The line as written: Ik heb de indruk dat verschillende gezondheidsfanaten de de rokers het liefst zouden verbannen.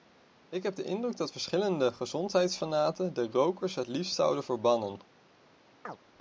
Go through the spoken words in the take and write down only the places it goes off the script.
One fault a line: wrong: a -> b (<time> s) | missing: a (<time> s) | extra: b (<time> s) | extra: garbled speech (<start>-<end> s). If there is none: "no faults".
missing: de (3.3 s)